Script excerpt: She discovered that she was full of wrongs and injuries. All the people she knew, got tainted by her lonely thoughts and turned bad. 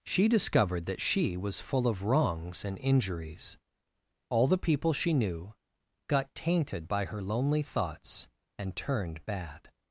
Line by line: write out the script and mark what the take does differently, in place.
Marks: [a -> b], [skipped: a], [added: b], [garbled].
She discovered that she was full of wrongs and injuries. All the people she knew, got tainted by her lonely thoughts and turned bad.